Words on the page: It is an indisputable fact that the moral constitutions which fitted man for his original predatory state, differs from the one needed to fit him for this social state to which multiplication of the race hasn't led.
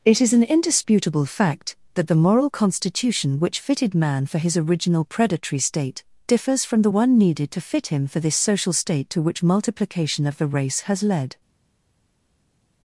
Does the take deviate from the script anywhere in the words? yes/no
yes